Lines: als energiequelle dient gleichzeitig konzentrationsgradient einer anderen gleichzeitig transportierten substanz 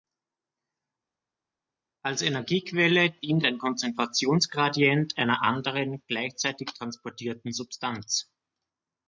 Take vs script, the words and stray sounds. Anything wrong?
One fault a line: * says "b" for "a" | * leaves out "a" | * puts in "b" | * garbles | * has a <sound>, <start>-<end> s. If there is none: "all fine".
* says "ein" for "gleichzeitig"